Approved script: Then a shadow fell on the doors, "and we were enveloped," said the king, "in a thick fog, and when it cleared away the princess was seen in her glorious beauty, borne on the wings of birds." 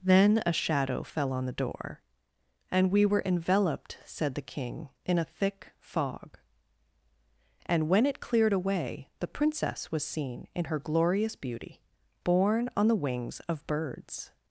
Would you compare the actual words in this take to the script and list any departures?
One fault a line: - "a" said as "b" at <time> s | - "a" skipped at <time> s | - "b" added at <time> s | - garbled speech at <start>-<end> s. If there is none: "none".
- "doors" said as "door" at 1.5 s